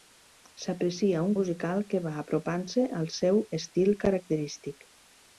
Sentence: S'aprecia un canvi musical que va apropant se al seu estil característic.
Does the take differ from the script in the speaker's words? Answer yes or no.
yes